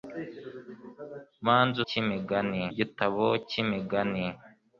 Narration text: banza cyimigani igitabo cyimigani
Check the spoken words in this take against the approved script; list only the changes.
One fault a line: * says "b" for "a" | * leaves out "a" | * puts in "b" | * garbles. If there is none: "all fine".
all fine